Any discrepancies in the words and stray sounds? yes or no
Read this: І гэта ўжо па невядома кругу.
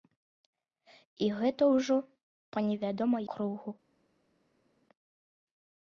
no